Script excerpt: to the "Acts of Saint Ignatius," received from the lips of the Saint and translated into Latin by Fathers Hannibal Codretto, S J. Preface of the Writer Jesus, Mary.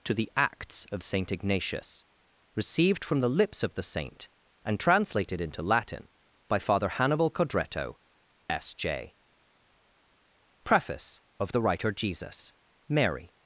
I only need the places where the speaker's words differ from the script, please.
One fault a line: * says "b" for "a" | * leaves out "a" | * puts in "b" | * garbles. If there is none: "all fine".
* says "Father" for "Fathers"